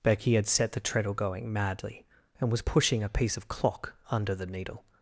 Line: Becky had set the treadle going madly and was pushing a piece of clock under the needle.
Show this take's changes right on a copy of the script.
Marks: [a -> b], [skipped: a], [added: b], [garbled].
Becky had set the treadle going madly and was pushing a piece of clock under the needle.